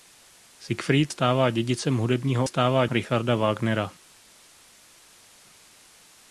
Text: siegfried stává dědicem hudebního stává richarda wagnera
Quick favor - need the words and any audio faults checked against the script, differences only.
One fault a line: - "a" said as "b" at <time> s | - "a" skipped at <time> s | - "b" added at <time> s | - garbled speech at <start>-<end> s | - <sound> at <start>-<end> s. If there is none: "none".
none